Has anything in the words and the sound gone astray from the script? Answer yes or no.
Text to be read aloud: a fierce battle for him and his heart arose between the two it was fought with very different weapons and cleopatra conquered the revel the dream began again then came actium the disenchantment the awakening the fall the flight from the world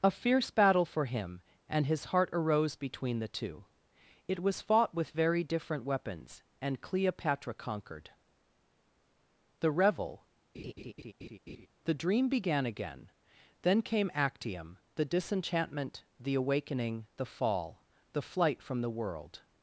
yes